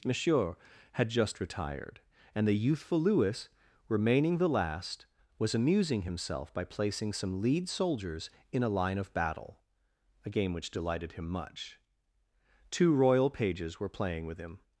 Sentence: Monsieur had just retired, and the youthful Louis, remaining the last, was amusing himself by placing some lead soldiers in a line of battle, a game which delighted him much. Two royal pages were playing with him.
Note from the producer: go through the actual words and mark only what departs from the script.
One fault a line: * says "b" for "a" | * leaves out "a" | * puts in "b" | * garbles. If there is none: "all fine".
all fine